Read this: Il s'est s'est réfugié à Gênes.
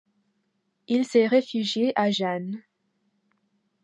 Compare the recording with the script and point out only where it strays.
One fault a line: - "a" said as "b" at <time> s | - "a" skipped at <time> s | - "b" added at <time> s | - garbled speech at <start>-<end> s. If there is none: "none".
- "s'est" skipped at 1.3 s